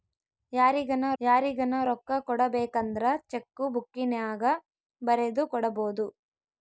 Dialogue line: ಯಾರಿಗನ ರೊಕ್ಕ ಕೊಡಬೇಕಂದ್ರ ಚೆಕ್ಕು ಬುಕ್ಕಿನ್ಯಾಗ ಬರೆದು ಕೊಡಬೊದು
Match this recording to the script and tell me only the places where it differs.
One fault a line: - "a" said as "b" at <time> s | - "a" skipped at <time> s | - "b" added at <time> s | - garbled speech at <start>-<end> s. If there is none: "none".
- "ಯಾರಿಗನ" added at 1.2 s